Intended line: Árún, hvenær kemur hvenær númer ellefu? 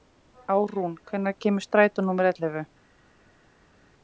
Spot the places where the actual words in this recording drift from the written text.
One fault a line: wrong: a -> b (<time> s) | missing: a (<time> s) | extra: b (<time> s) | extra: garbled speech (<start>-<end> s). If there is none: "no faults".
wrong: hvenær -> strætó (1.7 s)